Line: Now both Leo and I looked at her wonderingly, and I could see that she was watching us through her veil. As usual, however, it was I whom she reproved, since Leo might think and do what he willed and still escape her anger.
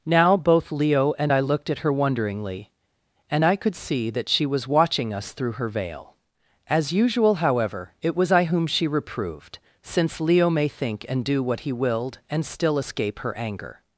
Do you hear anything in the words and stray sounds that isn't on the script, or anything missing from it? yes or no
yes